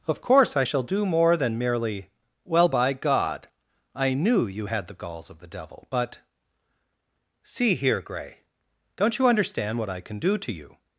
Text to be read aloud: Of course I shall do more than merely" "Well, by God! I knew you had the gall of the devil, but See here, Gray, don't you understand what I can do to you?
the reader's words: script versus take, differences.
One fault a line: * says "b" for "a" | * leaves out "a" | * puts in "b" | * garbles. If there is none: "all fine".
* says "galls" for "gall"